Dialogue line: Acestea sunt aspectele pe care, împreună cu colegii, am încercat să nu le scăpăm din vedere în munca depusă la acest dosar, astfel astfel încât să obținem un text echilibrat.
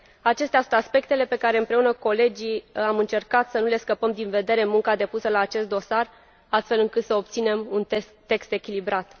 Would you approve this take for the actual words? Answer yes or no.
no